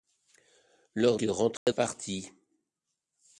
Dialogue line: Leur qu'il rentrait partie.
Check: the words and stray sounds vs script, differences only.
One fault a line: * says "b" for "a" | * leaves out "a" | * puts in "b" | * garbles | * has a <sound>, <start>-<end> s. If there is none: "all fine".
* has a dropout, 1.6-1.7 s